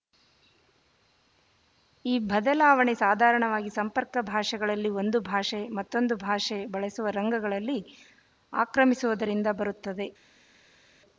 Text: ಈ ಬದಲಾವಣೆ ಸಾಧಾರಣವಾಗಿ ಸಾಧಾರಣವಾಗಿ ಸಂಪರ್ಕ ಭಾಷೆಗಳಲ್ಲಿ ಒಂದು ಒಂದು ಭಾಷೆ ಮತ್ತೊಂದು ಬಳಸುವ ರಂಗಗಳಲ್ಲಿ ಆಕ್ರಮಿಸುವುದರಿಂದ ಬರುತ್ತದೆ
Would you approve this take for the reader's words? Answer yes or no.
no